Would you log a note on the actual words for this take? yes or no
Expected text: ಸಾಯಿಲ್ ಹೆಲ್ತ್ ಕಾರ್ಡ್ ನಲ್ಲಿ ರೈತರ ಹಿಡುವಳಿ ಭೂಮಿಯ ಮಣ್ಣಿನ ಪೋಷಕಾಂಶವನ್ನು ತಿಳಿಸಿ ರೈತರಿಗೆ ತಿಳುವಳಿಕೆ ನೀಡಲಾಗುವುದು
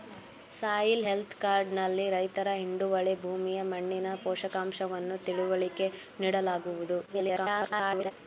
yes